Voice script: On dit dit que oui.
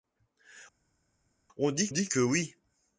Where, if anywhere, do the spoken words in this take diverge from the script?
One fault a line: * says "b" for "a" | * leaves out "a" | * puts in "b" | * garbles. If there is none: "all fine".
all fine